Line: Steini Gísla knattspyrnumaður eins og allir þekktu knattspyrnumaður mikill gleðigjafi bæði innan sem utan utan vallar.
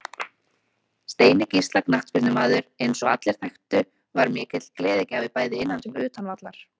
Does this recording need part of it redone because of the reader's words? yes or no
yes